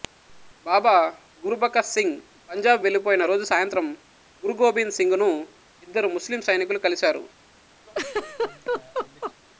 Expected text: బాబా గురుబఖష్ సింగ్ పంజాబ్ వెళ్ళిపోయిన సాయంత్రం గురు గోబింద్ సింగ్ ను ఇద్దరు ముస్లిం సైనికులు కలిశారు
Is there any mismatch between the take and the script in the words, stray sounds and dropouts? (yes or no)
yes